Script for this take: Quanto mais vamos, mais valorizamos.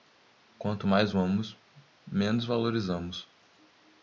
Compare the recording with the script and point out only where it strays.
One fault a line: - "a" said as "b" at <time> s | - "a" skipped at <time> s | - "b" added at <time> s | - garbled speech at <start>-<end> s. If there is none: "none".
- "mais" said as "menos" at 2.0 s